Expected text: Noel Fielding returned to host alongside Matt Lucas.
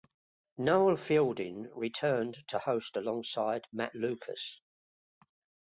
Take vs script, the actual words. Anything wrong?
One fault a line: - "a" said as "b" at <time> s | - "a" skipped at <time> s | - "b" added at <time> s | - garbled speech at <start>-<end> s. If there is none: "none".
none